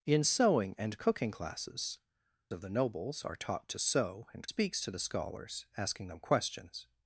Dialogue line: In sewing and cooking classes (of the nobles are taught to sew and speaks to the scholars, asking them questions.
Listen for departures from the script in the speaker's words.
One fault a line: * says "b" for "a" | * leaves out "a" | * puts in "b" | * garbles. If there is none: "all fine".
all fine